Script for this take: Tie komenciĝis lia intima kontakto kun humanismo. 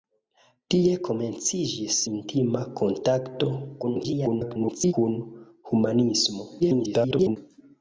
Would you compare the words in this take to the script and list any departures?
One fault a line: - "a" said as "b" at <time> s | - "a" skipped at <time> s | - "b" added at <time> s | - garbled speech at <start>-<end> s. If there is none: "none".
- "lia" skipped at 2.0 s
- garbled speech at 3.8-4.9 s
- garbled speech at 6.6-7.4 s